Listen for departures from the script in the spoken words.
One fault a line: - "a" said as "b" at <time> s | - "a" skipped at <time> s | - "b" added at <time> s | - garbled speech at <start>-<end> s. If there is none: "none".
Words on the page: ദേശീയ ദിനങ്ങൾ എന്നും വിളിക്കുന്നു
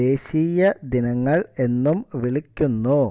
none